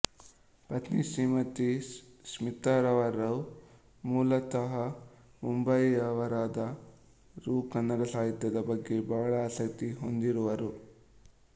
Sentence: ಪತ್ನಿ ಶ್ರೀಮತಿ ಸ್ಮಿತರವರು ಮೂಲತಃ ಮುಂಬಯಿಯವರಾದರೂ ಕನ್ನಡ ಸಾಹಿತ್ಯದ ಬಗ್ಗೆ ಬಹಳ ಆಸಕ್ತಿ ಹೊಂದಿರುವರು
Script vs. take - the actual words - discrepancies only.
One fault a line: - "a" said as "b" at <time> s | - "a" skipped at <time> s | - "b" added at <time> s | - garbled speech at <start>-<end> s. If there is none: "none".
none